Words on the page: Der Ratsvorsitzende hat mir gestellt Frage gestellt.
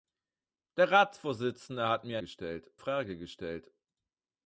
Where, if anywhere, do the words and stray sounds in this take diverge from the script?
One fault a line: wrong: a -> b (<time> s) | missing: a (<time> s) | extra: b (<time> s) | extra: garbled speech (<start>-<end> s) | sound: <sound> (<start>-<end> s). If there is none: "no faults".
no faults